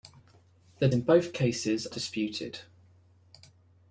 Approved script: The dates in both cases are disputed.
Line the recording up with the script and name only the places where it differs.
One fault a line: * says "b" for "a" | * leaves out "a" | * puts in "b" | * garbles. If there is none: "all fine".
* leaves out "dates"
* leaves out "are"